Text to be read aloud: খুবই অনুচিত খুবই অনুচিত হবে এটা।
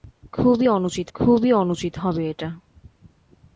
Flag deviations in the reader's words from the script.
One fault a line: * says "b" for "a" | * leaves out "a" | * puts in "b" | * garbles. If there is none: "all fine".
all fine